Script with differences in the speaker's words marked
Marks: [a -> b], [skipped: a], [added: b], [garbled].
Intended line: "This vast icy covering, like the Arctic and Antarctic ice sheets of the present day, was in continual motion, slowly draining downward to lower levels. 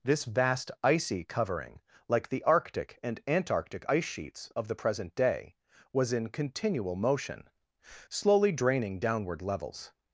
"This vast icy covering, like the Arctic and Antarctic ice sheets of the present day, was in continual motion, slowly draining downward [skipped: to lower] levels.